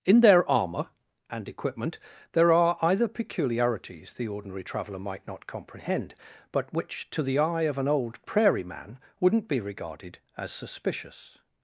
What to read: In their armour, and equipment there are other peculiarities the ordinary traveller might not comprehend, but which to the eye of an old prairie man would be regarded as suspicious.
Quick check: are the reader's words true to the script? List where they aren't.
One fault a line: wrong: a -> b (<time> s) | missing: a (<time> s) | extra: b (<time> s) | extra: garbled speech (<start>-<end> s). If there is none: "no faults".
wrong: other -> either (2.8 s)
wrong: would -> wouldn't (9.2 s)